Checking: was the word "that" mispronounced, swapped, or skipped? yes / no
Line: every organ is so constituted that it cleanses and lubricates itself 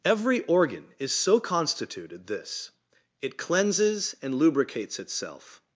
yes